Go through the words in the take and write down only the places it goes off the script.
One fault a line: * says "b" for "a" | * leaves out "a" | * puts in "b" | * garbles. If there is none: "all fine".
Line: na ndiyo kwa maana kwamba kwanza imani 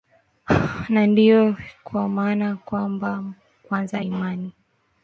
all fine